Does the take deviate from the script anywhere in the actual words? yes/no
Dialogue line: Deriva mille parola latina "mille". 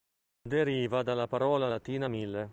yes